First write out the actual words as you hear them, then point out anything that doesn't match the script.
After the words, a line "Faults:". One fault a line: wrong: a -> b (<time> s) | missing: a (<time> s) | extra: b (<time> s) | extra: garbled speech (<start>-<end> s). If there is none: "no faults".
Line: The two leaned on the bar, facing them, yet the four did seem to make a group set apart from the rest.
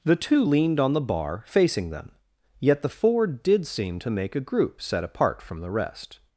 The two leaned on the bar, facing them, yet the four did seem to make a group set apart from the rest.
Faults:
no faults